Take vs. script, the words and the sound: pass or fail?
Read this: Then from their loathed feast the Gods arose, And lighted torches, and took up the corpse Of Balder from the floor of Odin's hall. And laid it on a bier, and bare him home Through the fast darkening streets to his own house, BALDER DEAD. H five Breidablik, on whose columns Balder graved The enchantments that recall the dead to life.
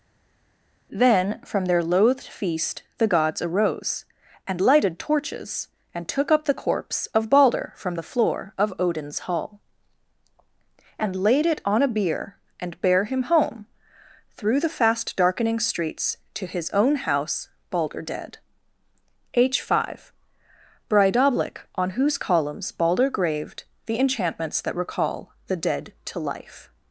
pass